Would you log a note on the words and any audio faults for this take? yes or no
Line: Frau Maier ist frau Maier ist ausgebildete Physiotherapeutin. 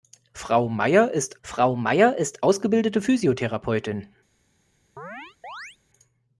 yes